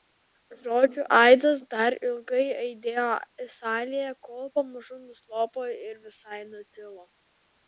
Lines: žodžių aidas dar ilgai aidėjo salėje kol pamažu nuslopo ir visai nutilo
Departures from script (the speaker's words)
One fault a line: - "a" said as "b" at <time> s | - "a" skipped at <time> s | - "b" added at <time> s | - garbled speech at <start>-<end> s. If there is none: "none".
none